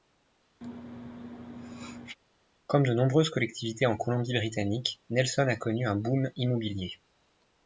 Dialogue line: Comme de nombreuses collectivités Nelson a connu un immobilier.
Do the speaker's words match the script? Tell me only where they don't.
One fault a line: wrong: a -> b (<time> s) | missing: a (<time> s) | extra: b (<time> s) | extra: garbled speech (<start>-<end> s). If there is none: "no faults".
extra: en Colombie Britannique (3.8 s)
extra: boom (5.9 s)